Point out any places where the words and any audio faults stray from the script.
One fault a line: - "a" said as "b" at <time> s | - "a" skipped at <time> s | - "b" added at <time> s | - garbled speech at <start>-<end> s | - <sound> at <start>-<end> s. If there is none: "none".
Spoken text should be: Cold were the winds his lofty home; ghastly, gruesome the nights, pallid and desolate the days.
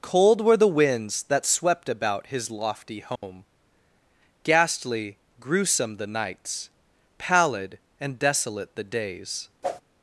- "that swept about" added at 1.2 s
- dropout at 3.2-3.2 s
- whoosh at 9.6-9.8 s